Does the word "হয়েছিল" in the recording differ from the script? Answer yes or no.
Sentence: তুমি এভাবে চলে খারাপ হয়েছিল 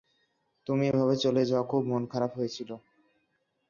no